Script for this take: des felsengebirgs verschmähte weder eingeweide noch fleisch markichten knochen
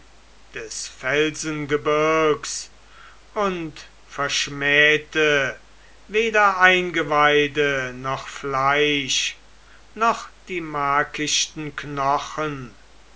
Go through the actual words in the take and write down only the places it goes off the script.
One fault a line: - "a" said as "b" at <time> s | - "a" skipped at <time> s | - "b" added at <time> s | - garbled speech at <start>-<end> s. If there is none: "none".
- "und" added at 3.4 s
- "noch die" added at 9.9 s